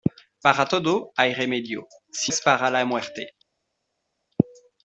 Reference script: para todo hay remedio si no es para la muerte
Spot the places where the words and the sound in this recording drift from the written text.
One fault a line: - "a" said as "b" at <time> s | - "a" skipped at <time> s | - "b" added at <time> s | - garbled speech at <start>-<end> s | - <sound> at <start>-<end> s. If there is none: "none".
- "no" skipped at 2.3 s